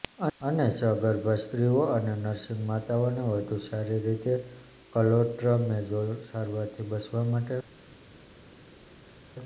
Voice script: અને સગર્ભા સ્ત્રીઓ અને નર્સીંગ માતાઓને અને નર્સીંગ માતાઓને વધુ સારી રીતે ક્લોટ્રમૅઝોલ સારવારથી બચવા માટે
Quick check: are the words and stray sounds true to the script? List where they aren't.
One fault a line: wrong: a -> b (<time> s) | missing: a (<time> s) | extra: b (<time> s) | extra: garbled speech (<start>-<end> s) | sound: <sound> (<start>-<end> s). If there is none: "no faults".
missing: અને નર્સીંગ માતાઓને (3.2 s)